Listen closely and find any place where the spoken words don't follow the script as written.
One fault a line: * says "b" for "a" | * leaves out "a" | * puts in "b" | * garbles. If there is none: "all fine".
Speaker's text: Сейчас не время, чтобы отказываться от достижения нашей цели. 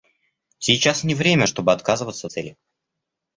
* leaves out "от достижения нашей"